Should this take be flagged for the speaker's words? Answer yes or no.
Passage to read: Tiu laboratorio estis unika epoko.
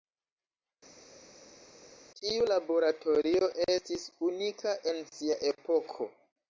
yes